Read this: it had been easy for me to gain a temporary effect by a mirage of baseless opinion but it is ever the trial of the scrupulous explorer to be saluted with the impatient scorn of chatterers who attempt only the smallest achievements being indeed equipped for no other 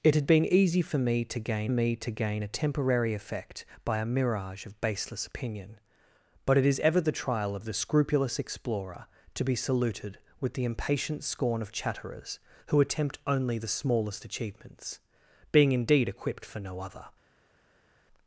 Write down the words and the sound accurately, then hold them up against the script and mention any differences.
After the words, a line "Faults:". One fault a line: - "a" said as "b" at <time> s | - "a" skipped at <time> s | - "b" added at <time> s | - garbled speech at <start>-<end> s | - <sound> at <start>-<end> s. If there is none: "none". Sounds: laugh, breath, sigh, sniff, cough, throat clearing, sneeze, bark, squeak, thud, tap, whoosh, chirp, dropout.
it had been easy for me to gain me to gain a temporary effect by a mirage of baseless opinion but it is ever the trial of the scrupulous explorer to be saluted with the impatient scorn of chatterers who attempt only the smallest achievements being indeed equipped for no other
Faults:
- "me to gain" added at 1.7 s